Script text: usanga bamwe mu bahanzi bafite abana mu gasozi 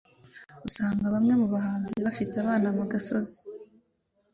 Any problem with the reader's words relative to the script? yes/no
no